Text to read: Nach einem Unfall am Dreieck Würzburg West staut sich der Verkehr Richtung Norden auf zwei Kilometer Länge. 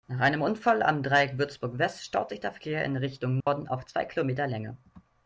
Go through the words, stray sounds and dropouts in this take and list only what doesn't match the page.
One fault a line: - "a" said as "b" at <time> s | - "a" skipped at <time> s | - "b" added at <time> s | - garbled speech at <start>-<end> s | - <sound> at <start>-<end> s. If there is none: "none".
- "in" added at 2.8 s
- dropout at 3.4-3.5 s